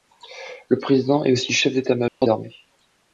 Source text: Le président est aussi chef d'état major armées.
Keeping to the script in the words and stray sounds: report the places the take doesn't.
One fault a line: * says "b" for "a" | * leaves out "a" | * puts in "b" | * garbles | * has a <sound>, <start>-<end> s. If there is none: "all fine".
* has a dropout, 2.1-2.2 s